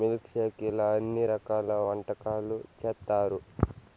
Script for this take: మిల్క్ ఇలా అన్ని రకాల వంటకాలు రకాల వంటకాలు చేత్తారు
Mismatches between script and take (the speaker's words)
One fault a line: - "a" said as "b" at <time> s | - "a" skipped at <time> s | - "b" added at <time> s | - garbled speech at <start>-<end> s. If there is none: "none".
- "షేక్" added at 0.3 s
- "రకాల వంటకాలు" skipped at 2.6 s